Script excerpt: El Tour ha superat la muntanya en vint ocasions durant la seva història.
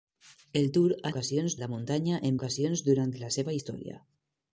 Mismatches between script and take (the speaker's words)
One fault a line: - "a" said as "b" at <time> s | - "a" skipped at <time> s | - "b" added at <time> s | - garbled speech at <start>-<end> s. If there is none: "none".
- "superat" said as "ocasions" at 1.1 s
- "vint" skipped at 2.4 s